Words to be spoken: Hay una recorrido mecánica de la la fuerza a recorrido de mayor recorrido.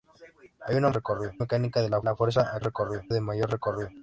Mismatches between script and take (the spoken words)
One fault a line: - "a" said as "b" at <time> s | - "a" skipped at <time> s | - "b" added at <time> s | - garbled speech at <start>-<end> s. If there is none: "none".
none